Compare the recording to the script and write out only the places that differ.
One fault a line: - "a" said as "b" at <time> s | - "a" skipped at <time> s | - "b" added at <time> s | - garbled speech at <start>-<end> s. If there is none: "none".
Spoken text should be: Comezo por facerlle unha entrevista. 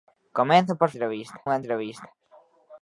- "facerlle" said as "entrevista" at 0.9 s